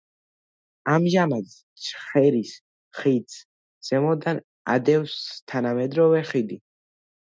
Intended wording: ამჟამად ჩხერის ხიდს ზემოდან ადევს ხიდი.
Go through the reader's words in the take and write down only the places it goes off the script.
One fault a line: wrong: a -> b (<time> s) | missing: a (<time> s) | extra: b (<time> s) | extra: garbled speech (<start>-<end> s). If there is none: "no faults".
extra: თანამედროვე (5.5 s)